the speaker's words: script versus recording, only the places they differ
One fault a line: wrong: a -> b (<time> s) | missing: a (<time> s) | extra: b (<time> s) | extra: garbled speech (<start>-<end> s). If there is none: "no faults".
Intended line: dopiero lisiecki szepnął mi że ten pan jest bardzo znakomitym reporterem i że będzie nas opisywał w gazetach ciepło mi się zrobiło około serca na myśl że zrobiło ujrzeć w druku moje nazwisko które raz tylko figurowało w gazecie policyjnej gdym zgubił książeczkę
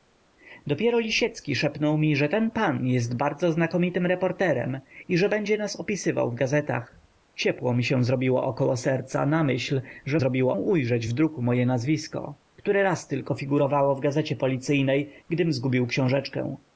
no faults